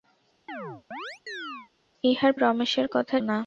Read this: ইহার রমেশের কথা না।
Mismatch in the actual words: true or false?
false